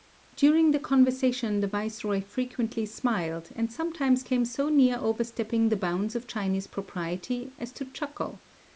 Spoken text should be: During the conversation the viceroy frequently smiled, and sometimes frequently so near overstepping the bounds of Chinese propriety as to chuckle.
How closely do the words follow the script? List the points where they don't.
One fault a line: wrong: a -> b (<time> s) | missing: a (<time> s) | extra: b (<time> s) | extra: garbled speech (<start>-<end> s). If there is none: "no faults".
wrong: frequently -> came (4.2 s)